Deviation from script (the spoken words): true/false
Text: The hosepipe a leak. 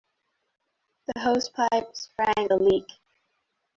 true